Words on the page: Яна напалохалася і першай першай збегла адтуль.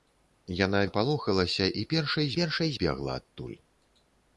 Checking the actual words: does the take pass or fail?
pass